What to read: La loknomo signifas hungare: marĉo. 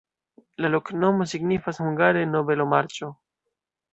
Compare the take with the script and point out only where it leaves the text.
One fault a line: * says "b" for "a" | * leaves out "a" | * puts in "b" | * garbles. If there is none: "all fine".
* puts in "nobelo"